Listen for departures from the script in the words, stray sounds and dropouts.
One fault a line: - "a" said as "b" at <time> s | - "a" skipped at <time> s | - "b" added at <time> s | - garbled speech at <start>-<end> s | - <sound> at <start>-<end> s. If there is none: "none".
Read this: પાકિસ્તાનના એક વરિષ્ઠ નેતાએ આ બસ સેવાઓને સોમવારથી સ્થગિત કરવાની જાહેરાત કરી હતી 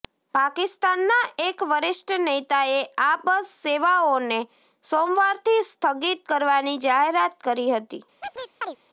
- chirp at 8.2-8.8 s